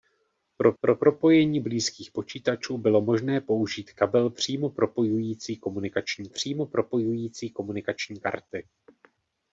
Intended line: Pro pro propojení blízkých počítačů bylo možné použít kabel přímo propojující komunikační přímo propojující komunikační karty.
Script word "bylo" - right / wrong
right